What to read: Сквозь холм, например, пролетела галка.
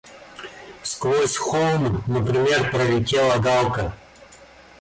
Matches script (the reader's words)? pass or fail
pass